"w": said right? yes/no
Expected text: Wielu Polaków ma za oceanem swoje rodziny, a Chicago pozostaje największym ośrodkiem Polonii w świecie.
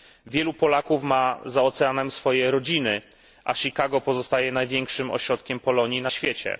no